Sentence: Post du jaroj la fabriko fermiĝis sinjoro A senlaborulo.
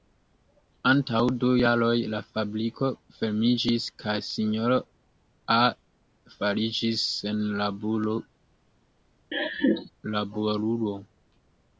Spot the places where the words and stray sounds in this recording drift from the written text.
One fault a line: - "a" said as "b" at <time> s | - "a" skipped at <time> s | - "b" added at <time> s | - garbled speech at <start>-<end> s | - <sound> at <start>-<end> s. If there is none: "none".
- "Post" said as "Antaŭ" at 0.9 s
- "kaj" added at 4.0 s
- "fariĝis" added at 6.4 s
- laugh at 9.3-9.9 s